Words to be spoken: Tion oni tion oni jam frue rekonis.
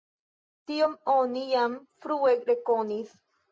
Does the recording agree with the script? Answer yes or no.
no